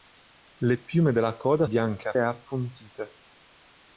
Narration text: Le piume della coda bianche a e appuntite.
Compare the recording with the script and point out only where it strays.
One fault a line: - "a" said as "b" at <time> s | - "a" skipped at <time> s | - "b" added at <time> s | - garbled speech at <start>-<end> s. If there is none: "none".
none